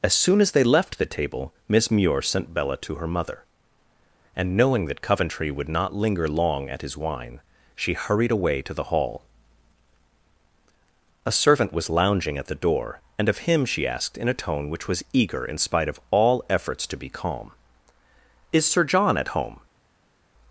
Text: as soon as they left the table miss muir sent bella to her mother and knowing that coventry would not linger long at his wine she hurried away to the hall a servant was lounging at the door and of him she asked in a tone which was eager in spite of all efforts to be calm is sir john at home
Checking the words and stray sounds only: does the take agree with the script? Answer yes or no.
yes